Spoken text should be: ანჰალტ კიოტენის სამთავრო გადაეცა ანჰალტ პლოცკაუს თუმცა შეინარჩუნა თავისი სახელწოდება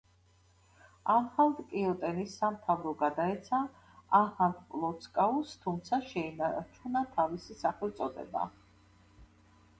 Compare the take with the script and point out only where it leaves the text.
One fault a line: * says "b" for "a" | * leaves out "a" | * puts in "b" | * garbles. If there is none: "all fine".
all fine